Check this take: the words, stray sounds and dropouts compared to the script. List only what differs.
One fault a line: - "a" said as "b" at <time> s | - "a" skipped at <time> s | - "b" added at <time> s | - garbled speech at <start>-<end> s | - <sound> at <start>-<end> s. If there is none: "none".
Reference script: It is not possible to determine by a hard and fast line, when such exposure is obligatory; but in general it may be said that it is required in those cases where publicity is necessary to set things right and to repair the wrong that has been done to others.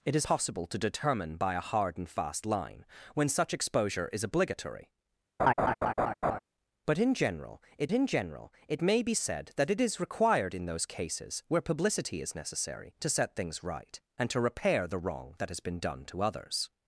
- "not" skipped at 0.2 s
- laugh at 5.4-6.4 s
- "in general it" added at 7.9 s